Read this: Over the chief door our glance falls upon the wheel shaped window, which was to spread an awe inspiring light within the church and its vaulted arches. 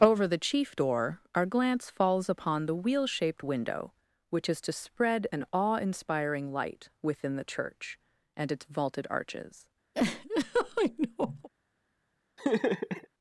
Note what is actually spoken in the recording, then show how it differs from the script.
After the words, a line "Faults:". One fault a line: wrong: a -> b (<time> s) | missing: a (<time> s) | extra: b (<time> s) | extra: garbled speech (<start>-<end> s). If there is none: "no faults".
Over the chief door our glance falls upon the wheel shaped window, which is to spread an awe inspiring light within the church and its vaulted arches.
Faults:
wrong: was -> is (4.5 s)